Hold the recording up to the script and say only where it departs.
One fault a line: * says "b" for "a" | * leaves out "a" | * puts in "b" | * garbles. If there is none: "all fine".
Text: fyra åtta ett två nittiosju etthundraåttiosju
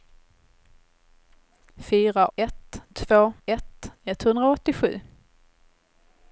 * leaves out "åtta"
* says "ett" for "nittiosju"